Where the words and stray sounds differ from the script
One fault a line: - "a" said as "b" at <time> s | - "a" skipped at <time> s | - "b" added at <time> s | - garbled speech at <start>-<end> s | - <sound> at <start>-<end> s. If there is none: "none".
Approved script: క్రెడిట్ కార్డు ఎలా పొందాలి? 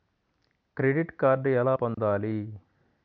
- dropout at 1.9-2.0 s